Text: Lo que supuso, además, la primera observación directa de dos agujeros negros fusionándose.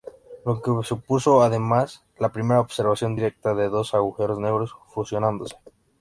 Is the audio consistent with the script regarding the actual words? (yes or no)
yes